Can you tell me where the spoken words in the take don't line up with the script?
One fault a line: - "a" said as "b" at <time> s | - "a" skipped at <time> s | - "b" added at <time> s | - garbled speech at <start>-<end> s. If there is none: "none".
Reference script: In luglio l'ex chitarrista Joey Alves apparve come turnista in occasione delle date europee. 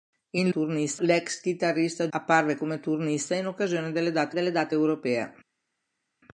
- "luglio" said as "turnista" at 0.5 s
- "Joey Alves" skipped at 2.1 s
- "delle date" added at 4.3 s